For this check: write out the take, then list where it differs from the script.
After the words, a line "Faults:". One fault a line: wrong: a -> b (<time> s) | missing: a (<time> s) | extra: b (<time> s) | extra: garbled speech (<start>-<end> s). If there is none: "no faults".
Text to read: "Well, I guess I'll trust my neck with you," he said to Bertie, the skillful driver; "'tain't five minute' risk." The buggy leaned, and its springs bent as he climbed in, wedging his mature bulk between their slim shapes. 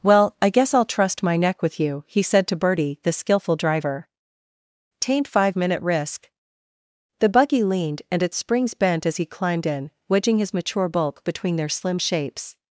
"Well, I guess I'll trust my neck with you," he said to Bertie, the skillful driver; "'tain't five minute' risk." The buggy leaned, and its springs bent as he climbed in, wedging his mature bulk between their slim shapes.
Faults:
no faults